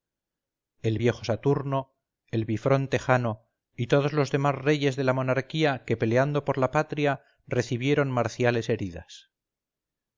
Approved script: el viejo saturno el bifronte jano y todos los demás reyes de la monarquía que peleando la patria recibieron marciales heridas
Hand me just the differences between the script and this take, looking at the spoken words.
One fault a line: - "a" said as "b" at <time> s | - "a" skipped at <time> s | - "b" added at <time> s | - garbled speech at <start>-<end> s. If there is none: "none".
- "por" added at 6.4 s